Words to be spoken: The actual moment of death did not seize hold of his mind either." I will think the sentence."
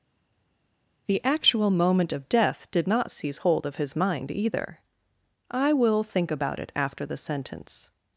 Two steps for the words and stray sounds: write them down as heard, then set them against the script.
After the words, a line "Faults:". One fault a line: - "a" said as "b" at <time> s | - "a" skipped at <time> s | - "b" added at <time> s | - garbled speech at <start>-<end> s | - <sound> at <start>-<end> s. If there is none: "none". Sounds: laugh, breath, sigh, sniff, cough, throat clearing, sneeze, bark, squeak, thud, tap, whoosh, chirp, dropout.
The actual moment of death did not seize hold of his mind either." I will think about it after the sentence."
Faults:
- "about it after" added at 6.3 s